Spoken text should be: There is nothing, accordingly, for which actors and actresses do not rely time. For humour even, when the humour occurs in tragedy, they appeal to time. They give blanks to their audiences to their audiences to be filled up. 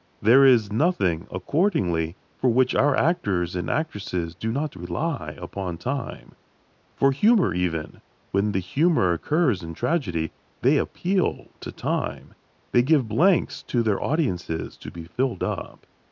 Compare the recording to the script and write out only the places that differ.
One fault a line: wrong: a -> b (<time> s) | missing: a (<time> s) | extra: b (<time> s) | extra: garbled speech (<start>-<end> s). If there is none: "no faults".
extra: our (2.7 s)
extra: upon (5.4 s)
missing: their audiences to (14.9 s)